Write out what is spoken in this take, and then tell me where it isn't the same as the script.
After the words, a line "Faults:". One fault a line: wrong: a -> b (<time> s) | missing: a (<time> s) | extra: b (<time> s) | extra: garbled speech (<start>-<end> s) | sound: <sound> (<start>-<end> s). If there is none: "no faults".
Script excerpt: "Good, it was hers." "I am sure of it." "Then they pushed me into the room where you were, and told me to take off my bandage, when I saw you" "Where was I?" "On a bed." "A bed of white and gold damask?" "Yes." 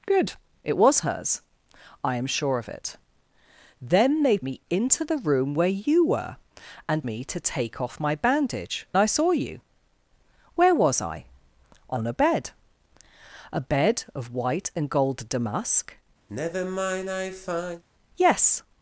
"Good, it was hers." "I am sure of it." "Then they me into the room where you were, and me to take off my bandage, I saw you" "Where was I?" "On a bed." "A bed of white and gold damask?" "Yes."
Faults:
missing: pushed (4.4 s)
missing: told (7.0 s)
missing: when (8.9 s)
sound: sigh (16.3-17.8 s)